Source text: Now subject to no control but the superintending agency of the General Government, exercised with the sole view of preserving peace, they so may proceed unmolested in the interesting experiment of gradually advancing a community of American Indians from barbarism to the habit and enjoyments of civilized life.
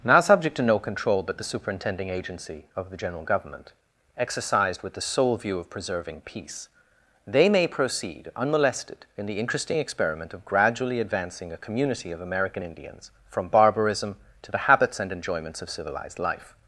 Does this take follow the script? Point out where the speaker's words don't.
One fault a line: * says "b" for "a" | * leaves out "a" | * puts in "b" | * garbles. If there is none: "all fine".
* leaves out "so"
* says "habits" for "habit"